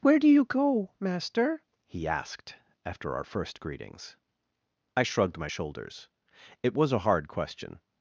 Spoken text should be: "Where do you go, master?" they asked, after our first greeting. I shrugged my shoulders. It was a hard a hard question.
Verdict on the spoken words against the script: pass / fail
fail